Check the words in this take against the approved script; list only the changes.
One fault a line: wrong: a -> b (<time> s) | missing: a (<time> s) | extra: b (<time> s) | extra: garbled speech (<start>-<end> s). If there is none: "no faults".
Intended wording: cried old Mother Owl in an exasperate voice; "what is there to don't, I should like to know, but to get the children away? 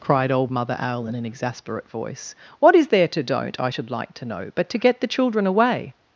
no faults